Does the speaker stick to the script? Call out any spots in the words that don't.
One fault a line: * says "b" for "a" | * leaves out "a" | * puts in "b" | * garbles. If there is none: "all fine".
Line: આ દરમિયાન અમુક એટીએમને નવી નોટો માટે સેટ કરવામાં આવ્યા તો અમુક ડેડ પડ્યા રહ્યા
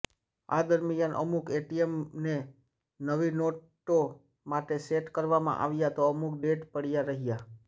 all fine